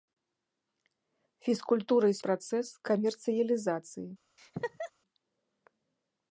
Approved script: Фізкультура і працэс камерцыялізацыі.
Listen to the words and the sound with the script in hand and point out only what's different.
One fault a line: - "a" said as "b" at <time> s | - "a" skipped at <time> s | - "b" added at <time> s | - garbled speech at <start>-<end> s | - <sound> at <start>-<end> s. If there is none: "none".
- laugh at 4.4-4.9 s